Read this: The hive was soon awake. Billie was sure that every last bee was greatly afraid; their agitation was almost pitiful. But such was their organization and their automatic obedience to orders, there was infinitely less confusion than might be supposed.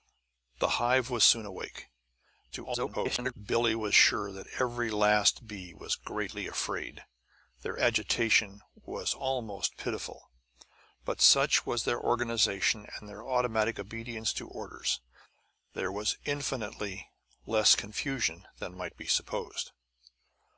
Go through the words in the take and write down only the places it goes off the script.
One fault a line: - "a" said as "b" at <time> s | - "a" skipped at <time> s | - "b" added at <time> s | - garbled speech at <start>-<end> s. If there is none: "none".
- garbled speech at 2.5-3.3 s